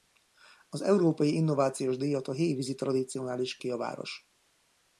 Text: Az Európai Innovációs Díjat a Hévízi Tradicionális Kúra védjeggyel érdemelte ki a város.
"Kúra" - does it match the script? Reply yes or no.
no